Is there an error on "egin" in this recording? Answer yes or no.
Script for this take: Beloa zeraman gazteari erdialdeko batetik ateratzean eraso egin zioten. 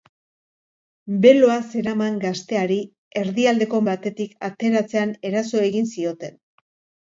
no